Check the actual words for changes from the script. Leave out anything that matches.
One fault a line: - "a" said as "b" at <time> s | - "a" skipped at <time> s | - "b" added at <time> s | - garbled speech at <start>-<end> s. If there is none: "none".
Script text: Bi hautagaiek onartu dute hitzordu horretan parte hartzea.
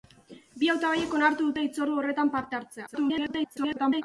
- garbled speech at 2.9-4.0 s